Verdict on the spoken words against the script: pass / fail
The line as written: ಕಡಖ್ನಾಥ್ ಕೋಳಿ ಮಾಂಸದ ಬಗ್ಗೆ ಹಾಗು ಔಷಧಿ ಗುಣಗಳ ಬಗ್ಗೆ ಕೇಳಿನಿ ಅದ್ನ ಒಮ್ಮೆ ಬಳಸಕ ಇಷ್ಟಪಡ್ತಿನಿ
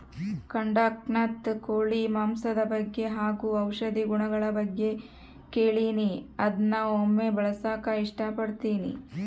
pass